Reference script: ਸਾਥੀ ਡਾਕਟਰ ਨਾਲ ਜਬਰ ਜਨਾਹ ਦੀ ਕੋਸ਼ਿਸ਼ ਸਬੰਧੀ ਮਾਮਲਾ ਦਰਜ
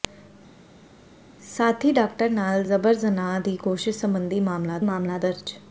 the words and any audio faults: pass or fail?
fail